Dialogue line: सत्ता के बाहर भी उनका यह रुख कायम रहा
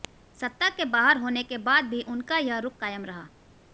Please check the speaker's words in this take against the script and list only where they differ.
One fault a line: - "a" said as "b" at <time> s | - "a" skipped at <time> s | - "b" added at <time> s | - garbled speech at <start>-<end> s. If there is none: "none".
- "होने के बाद" added at 1.2 s